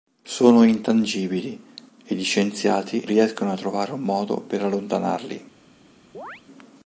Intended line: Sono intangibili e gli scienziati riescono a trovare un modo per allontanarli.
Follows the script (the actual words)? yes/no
yes